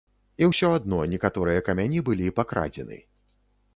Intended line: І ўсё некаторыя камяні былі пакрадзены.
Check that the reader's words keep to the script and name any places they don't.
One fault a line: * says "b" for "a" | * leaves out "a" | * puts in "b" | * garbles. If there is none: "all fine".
* puts in "адно"